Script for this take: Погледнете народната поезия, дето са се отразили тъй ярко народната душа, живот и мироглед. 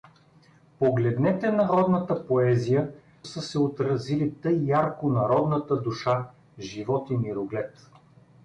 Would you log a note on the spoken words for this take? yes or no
yes